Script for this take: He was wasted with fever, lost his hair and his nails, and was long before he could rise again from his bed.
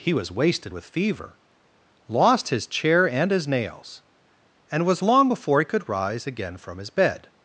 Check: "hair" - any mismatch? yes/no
yes